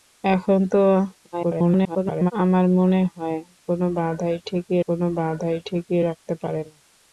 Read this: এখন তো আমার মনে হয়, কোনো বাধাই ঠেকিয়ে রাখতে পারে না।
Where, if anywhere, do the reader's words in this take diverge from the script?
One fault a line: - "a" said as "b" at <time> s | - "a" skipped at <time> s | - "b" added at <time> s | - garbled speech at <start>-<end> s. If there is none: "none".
- garbled speech at 1.3-2.3 s
- "কোনো বাধাই ঠেকিয়ে" added at 4.9 s